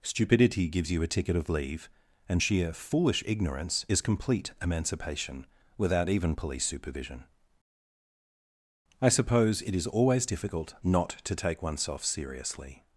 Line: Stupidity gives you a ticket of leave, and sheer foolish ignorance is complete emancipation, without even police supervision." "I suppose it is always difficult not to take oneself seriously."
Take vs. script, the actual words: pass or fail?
pass